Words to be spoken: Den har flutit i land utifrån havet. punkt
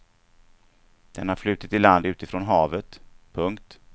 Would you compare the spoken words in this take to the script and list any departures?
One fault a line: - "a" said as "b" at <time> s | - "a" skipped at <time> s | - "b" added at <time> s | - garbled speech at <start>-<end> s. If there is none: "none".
none